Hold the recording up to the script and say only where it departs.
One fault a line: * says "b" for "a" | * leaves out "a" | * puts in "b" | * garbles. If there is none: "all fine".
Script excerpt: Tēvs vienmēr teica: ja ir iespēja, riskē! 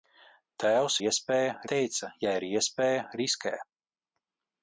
* says "iespēja" for "vienmēr"